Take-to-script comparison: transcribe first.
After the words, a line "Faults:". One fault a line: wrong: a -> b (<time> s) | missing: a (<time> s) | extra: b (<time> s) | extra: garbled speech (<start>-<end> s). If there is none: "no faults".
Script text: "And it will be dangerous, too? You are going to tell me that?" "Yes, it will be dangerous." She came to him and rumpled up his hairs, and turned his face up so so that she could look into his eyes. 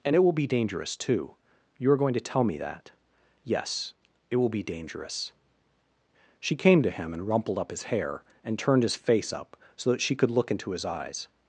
"And it will be dangerous, too? You are going to tell me that?" "Yes, it will be dangerous." She came to him and rumpled up his hair, and turned his face up so that she could look into his eyes.
Faults:
wrong: hairs -> hair (7.9 s)
missing: so (9.9 s)